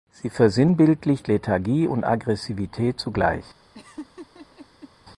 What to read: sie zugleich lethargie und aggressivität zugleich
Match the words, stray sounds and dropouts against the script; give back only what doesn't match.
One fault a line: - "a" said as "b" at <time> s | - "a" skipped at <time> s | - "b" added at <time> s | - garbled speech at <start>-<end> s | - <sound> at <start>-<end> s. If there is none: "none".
- "zugleich" said as "versinnbildlicht" at 0.3 s
- laugh at 3.7-4.9 s